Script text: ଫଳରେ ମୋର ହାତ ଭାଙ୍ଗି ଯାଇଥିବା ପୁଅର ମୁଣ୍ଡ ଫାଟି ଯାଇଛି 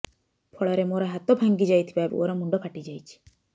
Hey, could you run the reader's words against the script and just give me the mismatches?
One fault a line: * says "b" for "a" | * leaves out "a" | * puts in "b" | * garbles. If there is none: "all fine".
all fine